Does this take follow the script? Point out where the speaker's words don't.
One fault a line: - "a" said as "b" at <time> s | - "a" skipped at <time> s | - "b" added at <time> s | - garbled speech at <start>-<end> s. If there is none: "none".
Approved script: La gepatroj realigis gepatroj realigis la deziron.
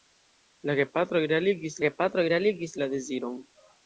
none